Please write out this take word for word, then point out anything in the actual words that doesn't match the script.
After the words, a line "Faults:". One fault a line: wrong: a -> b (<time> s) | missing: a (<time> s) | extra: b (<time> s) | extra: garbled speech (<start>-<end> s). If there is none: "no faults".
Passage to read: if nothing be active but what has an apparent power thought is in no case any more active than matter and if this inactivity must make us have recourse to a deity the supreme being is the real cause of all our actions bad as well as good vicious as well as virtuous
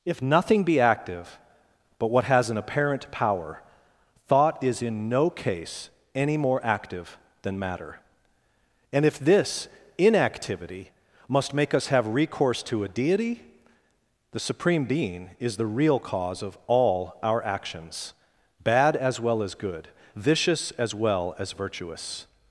if nothing be active but what has an apparent power thought is in no case any more active than matter and if this inactivity must make us have recourse to a deity the supreme being is the real cause of all our actions bad as well as good vicious as well as virtuous
Faults:
no faults